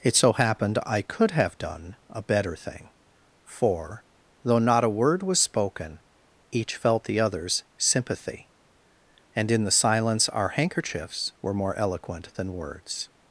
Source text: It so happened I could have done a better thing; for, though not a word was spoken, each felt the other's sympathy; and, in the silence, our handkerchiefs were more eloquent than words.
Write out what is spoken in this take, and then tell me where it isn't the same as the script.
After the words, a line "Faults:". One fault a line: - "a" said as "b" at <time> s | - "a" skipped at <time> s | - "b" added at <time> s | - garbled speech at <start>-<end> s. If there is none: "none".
It so happened I could have done a better thing; for, though not a word was spoken, each felt the other's sympathy; and, in the silence, our handkerchiefs were more eloquent than words.
Faults:
none